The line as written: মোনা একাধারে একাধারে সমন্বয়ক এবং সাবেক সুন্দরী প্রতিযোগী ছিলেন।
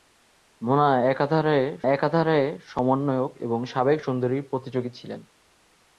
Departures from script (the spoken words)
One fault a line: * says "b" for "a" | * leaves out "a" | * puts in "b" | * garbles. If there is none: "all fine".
all fine